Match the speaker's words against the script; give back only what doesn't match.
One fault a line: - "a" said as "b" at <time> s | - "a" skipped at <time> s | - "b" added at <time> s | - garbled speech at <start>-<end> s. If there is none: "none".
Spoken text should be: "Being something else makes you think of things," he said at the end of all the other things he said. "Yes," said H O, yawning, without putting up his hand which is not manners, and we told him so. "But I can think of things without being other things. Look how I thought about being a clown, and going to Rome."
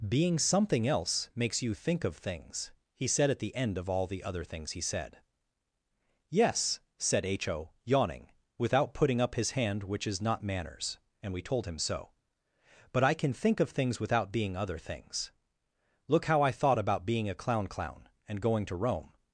- "clown" added at 17.7 s